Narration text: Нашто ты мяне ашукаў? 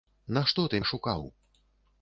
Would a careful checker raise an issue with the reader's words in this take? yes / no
yes